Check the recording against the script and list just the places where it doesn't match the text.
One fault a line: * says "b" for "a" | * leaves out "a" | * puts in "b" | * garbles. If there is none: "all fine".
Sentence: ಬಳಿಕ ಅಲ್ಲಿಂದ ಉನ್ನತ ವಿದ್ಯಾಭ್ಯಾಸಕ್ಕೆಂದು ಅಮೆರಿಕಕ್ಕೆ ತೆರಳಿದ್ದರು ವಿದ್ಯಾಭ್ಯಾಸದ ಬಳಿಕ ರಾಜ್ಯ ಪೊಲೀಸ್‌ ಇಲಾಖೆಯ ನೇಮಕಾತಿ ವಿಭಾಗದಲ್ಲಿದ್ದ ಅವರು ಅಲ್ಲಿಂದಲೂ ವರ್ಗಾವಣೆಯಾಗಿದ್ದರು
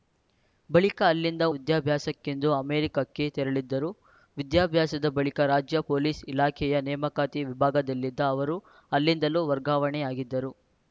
* leaves out "ಉನ್ನತ"